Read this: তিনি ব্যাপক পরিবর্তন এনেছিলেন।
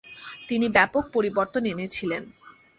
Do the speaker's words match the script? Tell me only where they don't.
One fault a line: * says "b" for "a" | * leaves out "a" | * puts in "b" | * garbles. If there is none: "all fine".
all fine